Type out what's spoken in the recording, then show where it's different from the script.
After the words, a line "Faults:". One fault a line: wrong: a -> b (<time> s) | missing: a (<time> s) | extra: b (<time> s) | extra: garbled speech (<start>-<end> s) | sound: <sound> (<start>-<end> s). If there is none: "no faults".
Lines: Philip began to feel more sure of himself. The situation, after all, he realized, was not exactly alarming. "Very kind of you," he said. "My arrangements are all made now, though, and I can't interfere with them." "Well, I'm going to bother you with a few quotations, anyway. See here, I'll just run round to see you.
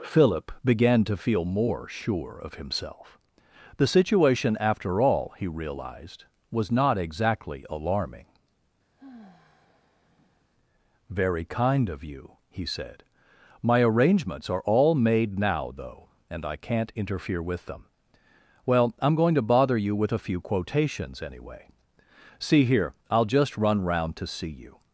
Philip began to feel more sure of himself. The situation, after all, he realized, was not exactly alarming. "Very kind of you," he said. "My arrangements are all made now, though, and I can't interfere with them." "Well, I'm going to bother you with a few quotations, anyway. See here, I'll just run round to see you.
Faults:
sound: sigh (8.9-10.5 s)